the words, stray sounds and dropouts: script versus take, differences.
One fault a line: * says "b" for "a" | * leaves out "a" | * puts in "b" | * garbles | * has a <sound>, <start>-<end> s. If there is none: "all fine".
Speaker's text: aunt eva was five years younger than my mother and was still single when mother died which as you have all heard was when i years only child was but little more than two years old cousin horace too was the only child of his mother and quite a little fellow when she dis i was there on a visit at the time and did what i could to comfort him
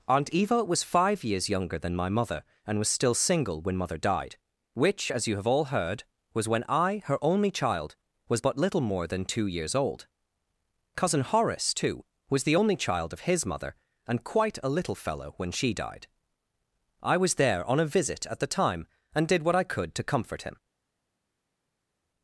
* says "her" for "years"
* says "died" for "dis"